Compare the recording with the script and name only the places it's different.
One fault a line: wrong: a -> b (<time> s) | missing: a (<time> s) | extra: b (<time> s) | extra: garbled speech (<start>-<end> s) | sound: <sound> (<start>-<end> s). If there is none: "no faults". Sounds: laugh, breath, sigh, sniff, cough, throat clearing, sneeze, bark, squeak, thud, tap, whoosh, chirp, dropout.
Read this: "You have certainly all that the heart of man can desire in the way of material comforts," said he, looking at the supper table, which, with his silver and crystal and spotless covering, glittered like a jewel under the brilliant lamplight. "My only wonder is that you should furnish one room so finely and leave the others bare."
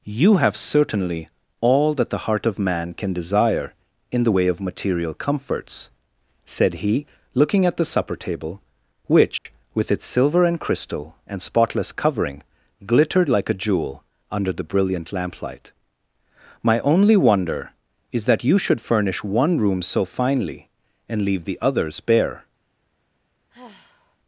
sound: dropout (9.4-9.5 s)
wrong: his -> its (9.9 s)
sound: sigh (23.5-24.2 s)